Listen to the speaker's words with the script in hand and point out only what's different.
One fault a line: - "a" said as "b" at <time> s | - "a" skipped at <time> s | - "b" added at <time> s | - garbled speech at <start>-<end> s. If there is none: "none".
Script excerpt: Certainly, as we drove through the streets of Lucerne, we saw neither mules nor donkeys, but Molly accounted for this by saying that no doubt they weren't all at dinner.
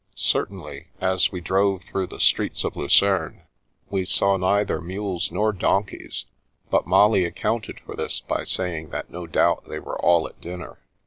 - "weren't" said as "were" at 9.8 s